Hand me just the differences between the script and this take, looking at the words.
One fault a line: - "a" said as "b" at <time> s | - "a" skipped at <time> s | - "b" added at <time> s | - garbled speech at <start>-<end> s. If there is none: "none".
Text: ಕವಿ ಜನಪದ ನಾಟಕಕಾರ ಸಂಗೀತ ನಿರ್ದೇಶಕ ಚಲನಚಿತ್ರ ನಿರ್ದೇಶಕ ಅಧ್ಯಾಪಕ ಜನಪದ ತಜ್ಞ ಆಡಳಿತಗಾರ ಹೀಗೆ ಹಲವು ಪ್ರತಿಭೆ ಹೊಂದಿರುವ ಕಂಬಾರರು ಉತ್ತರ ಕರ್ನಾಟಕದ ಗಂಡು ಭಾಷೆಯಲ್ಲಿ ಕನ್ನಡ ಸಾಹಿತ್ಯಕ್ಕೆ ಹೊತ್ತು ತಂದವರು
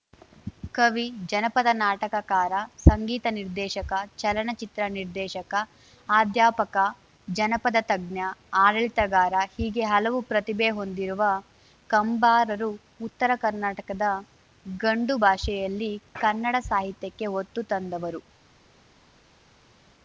none